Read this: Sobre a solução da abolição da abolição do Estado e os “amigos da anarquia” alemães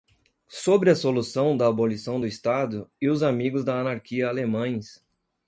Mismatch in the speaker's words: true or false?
true